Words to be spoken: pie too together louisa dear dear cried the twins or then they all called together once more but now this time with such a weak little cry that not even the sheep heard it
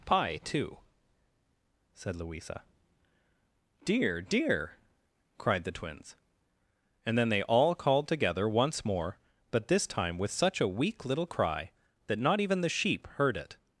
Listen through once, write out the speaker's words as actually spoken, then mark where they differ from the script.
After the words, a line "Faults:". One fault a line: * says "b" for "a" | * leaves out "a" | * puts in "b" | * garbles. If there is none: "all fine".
pie too said louisa dear dear cried the twins and then they all called together once more but this time with such a weak little cry that not even the sheep heard it
Faults:
* says "said" for "together"
* says "and" for "or"
* leaves out "now"